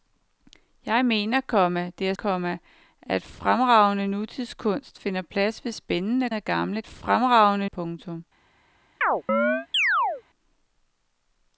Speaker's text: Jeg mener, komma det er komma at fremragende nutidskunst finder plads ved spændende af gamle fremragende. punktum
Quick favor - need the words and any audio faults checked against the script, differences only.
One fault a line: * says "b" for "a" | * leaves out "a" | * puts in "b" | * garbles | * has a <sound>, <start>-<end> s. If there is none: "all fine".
* has a chirp, 9.0-10.2 s